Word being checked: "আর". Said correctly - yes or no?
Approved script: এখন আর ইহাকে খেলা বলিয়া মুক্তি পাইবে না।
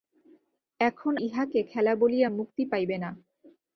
no